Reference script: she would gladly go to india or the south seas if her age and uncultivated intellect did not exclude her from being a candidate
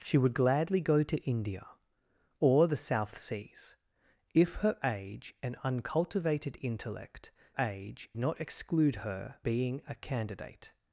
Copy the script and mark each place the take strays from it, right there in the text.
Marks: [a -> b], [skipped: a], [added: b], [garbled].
she would gladly go to india or the south seas if her age and uncultivated intellect [did -> age] not exclude her [skipped: from] being a candidate